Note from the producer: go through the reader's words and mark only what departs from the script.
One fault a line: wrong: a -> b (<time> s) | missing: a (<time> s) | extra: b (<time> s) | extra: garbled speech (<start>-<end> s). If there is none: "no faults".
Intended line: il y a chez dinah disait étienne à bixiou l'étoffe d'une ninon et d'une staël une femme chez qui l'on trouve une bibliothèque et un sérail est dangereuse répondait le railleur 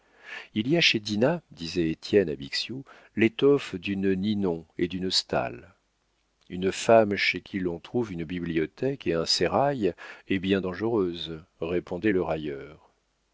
extra: bien (10.4 s)